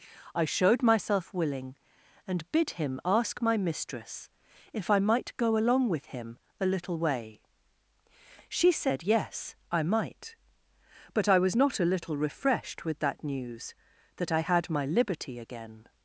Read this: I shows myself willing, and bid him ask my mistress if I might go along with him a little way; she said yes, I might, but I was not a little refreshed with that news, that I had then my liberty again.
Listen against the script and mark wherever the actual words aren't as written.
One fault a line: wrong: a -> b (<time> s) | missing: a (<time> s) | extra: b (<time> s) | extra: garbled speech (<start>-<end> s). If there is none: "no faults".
wrong: shows -> showed (0.5 s)
missing: then (14.7 s)